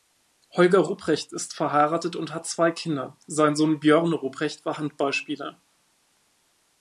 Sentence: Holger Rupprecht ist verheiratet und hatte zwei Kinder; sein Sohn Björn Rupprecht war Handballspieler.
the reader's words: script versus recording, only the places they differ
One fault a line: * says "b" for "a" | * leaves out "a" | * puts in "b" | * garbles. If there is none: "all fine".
* says "hat" for "hatte"